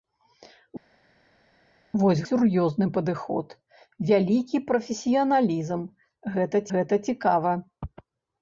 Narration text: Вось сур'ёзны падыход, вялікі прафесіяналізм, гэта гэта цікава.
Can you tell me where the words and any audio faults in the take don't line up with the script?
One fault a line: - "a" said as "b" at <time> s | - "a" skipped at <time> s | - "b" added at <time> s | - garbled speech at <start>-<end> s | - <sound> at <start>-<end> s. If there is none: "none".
none